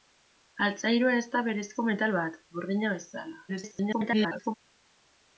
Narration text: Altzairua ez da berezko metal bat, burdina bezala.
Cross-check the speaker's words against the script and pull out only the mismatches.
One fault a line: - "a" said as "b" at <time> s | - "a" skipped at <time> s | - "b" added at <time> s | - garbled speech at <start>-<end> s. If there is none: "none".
- garbled speech at 3.5-4.5 s